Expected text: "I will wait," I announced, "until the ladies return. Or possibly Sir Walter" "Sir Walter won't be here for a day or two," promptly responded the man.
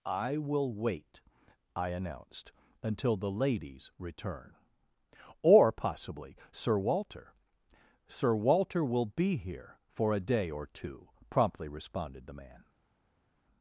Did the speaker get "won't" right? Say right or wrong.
wrong